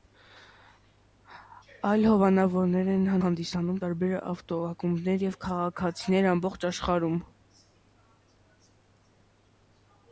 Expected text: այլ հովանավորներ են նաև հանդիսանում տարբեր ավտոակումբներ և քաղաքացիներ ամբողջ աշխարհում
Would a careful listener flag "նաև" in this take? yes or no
yes